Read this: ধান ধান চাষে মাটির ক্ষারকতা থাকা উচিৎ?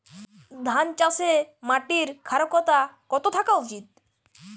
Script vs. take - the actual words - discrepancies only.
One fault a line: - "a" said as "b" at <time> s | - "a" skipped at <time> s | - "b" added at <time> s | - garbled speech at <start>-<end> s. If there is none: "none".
- "ধান" skipped at 0.9 s
- "কত" added at 3.1 s